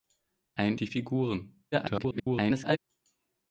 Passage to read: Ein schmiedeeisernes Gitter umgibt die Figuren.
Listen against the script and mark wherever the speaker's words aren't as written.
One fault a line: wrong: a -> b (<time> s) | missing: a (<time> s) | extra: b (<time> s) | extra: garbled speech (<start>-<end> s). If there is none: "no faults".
missing: schmiedeeisernes Gitter umgibt (0.8 s)
extra: garbled speech (1.7-2.8 s)